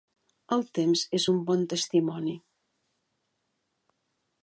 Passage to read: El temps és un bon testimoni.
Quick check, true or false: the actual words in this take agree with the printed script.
true